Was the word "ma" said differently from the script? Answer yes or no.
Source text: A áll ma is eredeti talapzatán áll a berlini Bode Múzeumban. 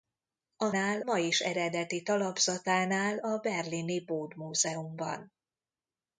no